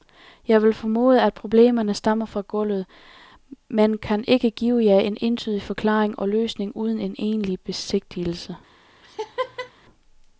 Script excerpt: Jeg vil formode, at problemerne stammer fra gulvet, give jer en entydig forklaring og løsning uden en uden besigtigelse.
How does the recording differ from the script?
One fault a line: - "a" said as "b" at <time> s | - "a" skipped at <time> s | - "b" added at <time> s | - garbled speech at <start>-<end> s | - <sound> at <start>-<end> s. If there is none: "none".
- "men kan ikke" added at 3.7 s
- "uden" said as "egentlig" at 7.2 s
- laugh at 9.0-9.7 s